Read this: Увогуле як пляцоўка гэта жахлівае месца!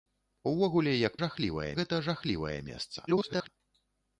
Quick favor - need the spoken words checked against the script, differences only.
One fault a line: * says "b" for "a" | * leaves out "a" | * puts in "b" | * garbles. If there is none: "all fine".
* says "жахлівае" for "пляцоўка"
* garbles